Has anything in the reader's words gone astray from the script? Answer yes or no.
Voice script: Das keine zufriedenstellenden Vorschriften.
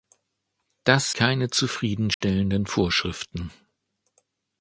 no